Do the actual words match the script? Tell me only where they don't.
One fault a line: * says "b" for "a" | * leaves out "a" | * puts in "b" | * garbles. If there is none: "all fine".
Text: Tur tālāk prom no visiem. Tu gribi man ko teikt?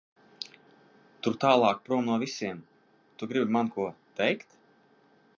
all fine